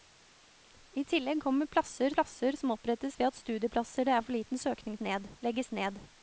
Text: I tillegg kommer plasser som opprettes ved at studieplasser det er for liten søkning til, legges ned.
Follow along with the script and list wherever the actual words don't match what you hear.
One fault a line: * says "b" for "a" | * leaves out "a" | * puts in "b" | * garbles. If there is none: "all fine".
* puts in "plasser"
* says "ned" for "til"